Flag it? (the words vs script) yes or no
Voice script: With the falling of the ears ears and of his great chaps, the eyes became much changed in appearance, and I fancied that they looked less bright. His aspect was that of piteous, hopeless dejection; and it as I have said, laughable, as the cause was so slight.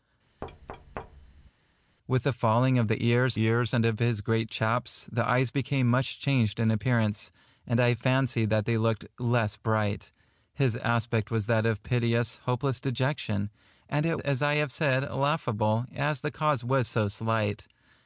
no